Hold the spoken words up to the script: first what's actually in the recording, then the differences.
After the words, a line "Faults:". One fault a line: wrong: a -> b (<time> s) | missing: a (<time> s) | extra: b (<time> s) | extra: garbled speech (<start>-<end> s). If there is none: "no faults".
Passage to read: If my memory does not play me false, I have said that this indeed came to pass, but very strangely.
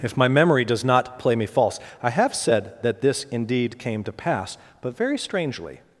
If my memory does not play me false, I have said that this indeed came to pass, but very strangely.
Faults:
no faults